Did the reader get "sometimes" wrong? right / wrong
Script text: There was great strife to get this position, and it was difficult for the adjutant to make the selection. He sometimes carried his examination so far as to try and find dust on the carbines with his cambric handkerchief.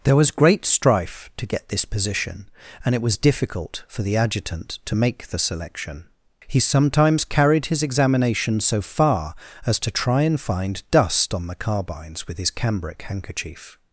right